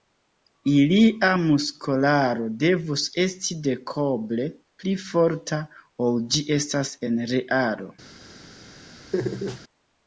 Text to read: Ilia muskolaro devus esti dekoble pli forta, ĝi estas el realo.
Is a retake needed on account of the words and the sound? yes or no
yes